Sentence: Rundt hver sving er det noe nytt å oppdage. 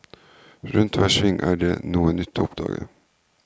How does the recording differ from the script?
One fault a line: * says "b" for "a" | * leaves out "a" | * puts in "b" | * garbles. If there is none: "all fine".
all fine